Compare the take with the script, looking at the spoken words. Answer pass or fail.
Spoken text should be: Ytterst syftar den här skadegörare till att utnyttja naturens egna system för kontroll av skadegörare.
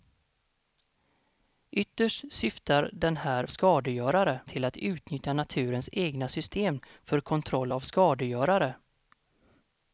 pass